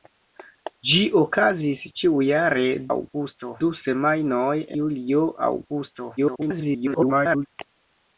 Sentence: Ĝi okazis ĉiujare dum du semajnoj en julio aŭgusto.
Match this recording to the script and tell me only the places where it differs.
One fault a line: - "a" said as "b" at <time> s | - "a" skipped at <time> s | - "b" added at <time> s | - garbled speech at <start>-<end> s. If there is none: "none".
- "dum" said as "aŭgusto" at 2.9 s
- "en" skipped at 4.5 s
- garbled speech at 6.2-7.5 s